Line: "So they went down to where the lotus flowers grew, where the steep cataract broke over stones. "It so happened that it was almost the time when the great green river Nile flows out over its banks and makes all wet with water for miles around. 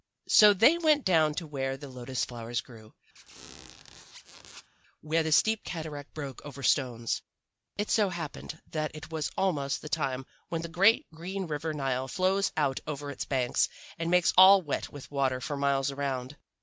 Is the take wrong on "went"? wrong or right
right